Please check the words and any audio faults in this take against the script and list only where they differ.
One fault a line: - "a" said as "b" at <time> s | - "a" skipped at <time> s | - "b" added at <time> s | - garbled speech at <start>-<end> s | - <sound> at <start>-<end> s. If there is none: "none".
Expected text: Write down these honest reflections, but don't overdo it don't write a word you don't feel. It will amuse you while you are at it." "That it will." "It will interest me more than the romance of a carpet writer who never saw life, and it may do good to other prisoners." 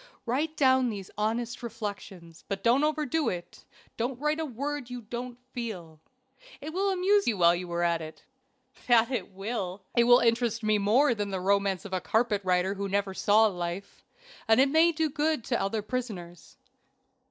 none